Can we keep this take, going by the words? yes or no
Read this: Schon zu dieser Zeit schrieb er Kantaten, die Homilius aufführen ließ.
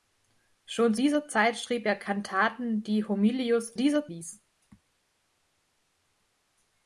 no